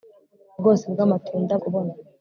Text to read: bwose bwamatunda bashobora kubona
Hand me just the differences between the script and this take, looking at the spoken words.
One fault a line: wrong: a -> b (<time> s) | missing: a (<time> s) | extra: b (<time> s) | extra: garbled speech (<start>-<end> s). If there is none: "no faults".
missing: bashobora (1.5 s)